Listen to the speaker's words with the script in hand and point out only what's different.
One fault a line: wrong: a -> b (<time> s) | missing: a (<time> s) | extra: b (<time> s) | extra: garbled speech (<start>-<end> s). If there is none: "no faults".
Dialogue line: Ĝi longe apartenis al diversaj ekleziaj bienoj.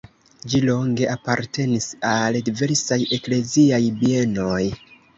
no faults